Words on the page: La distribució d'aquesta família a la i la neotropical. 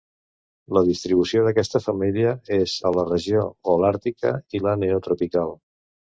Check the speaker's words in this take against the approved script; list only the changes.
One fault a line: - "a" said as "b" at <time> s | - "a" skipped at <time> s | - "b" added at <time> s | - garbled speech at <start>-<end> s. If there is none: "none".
- "és" added at 2.6 s
- "regió holàrtica" added at 3.1 s